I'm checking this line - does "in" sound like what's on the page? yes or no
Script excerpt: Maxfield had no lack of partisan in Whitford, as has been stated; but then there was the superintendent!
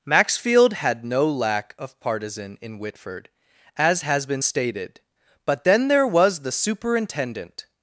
yes